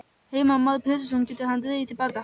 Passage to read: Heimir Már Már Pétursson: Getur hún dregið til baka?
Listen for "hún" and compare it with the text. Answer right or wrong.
wrong